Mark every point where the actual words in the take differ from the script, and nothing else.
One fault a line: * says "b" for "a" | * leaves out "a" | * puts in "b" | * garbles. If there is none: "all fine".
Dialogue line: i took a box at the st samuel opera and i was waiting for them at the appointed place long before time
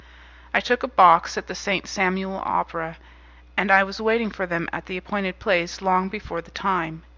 * puts in "the"